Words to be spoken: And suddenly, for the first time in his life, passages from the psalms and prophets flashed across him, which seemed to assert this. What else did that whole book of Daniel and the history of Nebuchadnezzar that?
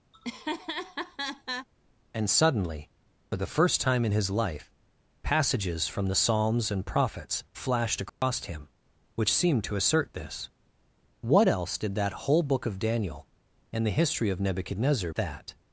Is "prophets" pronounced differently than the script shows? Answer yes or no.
no